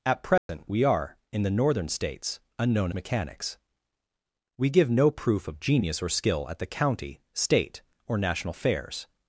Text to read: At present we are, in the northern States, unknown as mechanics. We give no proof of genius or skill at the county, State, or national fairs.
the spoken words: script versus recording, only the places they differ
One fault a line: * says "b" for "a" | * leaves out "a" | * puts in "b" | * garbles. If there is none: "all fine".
* leaves out "as"